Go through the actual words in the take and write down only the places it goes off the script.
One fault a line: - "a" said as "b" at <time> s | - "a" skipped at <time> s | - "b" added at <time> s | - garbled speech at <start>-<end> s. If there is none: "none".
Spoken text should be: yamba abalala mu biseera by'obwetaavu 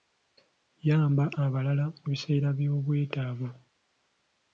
none